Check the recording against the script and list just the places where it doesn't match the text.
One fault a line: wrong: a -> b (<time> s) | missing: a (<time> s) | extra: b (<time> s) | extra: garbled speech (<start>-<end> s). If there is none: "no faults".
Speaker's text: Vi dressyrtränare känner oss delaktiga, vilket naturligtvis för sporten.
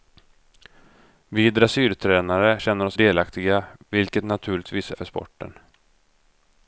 no faults